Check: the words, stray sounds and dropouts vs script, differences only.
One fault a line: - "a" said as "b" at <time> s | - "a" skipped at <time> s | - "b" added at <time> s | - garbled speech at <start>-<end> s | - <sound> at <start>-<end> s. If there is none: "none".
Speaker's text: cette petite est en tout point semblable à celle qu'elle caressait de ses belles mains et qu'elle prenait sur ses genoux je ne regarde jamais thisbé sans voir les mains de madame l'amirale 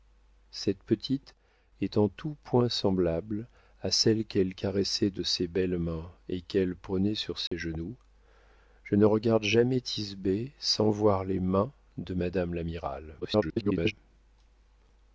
- dropout at 7.5-7.5 s
- garbled speech at 13.2-13.9 s